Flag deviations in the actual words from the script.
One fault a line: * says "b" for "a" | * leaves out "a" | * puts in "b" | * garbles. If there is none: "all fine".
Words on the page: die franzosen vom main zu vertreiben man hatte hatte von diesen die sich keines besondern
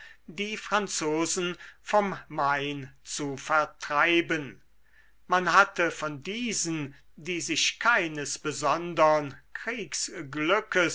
* leaves out "hatte"